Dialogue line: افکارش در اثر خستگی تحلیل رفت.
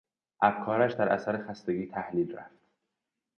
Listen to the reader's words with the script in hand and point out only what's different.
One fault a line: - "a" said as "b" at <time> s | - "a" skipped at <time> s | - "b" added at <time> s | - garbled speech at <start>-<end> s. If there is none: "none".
none